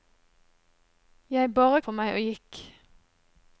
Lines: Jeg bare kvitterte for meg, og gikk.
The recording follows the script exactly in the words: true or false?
false